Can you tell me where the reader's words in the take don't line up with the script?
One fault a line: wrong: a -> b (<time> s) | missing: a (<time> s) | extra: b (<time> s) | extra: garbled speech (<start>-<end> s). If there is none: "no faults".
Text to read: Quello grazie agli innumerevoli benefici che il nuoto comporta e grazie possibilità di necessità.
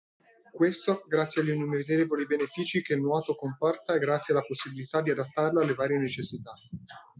wrong: Quello -> Questo (0.5 s)
extra: alla (4.3 s)
extra: adattarlo alle varie (5.1 s)